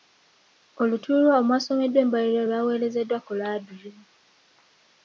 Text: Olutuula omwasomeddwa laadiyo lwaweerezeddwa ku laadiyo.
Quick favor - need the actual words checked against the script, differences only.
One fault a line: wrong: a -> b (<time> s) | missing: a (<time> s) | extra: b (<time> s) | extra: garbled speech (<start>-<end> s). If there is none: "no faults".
wrong: laadiyo -> embalirira (2.0 s)